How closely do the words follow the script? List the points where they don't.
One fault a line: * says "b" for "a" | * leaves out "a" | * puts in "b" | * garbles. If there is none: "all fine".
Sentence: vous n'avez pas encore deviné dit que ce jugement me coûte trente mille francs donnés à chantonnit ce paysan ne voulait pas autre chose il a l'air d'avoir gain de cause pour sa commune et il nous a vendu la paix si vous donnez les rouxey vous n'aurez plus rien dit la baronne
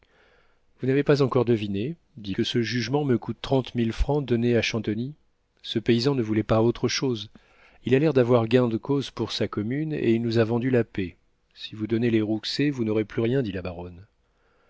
all fine